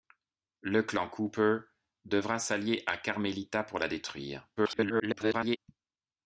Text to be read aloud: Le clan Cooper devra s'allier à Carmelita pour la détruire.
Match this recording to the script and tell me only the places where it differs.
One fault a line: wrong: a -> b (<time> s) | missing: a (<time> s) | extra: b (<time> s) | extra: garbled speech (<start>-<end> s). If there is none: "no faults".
extra: garbled speech (4.6-5.6 s)